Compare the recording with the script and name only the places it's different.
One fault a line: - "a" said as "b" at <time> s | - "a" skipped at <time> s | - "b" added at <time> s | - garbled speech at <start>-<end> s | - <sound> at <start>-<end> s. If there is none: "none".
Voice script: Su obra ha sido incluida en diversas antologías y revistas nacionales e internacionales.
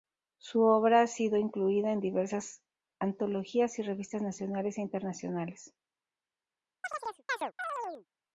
- chirp at 6.8-8.1 s